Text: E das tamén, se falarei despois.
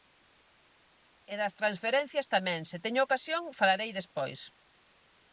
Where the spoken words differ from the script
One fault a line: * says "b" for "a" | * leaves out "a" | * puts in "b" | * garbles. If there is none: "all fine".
* puts in "transferencias"
* puts in "teño ocasión"